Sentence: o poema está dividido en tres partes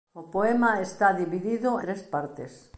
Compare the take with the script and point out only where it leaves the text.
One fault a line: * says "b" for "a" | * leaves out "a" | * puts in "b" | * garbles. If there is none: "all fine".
* leaves out "en"